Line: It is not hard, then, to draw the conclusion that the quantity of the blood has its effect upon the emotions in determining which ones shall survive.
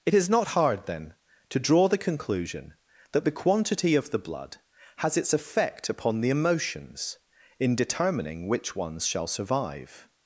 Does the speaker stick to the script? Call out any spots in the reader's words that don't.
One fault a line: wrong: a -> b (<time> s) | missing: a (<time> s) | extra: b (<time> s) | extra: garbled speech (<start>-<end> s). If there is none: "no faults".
no faults